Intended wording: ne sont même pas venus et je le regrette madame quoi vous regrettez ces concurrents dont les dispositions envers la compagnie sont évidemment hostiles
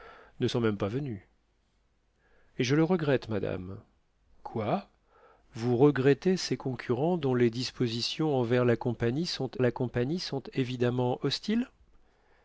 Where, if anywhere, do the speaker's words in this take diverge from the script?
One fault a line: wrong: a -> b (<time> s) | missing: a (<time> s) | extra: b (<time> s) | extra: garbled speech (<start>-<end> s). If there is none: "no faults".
extra: la compagnie sont (9.6 s)